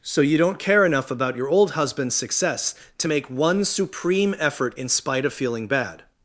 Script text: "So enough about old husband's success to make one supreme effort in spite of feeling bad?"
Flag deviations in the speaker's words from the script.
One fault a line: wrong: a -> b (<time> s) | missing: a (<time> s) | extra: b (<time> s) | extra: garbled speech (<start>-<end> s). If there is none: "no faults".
extra: you don't care (0.2 s)
extra: your (1.4 s)